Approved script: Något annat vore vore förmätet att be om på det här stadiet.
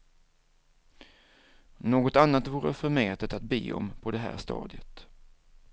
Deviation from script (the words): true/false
true